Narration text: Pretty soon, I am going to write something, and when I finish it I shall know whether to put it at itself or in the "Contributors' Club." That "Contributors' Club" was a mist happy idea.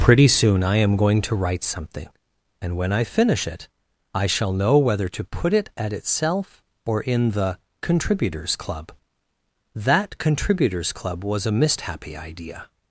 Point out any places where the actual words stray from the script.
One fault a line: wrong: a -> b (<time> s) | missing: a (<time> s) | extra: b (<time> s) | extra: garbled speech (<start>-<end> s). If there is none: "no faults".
no faults